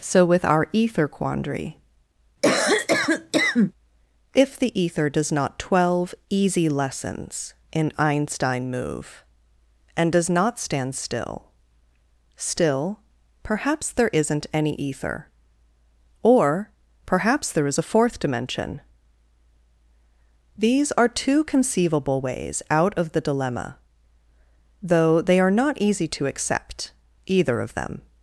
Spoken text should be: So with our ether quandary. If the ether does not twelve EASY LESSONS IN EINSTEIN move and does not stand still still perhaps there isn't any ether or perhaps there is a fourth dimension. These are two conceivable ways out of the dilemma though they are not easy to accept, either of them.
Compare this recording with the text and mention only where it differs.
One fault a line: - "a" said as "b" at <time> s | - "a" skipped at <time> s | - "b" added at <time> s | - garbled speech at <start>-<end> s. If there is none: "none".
none